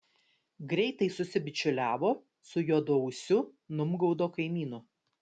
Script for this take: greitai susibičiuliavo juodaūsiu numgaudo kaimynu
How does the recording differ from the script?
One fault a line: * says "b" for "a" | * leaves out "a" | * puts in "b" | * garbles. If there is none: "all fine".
* puts in "su"